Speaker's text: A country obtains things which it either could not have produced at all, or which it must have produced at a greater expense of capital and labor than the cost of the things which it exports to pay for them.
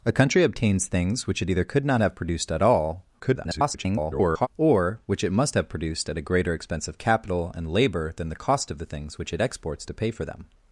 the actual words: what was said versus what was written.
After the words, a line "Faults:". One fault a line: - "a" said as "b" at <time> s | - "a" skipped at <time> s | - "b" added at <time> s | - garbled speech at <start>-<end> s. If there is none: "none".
A country obtains things which it either could not have produced at all, [garbled] or which it must have produced at a greater expense of capital and labor than the cost of the things which it exports to pay for them.
Faults:
- garbled speech at 3.2-4.5 s